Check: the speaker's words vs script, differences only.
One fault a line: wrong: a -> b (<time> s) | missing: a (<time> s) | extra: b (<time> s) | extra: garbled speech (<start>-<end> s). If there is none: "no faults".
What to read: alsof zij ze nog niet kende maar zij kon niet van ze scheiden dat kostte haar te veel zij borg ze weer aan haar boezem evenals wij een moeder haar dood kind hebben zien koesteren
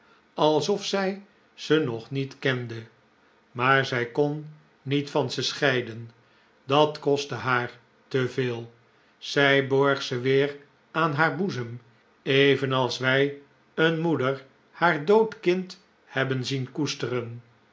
no faults